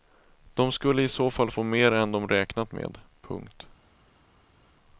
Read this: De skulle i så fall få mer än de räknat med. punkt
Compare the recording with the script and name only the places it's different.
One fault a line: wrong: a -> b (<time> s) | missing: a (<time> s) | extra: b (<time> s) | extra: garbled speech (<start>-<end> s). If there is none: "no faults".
no faults